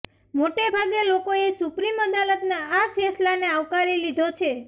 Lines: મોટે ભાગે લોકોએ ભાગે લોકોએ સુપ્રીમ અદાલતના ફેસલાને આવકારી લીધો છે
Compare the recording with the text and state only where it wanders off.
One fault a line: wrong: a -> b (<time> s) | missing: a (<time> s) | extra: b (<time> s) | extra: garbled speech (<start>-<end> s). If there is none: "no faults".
missing: ભાગે લોકોએ (1.5 s)
extra: આ (2.7 s)